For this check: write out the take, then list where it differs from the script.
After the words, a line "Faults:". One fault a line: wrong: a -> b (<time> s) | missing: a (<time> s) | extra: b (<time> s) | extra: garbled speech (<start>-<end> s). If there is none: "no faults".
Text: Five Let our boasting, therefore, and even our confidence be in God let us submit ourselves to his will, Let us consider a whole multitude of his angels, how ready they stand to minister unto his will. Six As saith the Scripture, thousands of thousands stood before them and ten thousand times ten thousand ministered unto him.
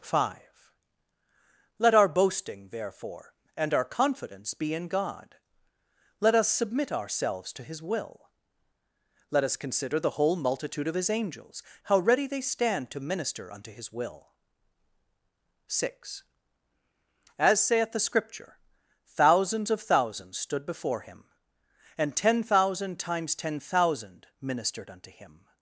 Five Let our boasting, therefore, and our confidence be in God let us submit ourselves to his will, Let us consider the whole multitude of his angels, how ready they stand to minister unto his will. Six As saith the Scripture, thousands of thousands stood before him and ten thousand times ten thousand ministered unto him.
Faults:
missing: even (3.7 s)
wrong: a -> the (10.0 s)
wrong: them -> him (21.0 s)